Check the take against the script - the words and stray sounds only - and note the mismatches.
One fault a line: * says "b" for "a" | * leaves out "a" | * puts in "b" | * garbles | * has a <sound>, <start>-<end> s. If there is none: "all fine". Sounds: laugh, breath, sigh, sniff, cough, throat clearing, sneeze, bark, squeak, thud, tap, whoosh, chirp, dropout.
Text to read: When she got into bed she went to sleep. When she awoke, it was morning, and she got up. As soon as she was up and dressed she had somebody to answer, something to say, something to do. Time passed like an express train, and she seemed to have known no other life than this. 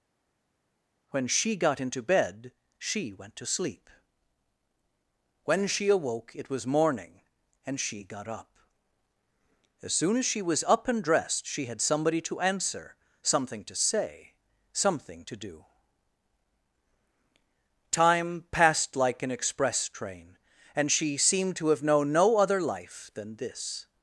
all fine